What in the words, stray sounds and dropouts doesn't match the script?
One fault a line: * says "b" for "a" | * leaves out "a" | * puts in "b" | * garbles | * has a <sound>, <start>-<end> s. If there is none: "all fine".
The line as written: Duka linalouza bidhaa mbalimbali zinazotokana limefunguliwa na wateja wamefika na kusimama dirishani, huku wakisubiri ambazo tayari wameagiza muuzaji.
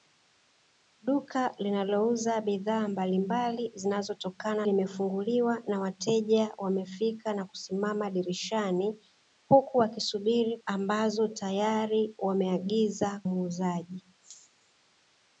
all fine